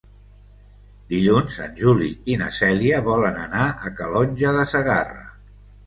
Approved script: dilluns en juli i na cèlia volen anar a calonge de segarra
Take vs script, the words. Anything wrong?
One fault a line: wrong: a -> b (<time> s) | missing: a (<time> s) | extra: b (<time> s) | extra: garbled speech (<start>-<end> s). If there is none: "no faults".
no faults